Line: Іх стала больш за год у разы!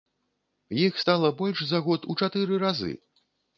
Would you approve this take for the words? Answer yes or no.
no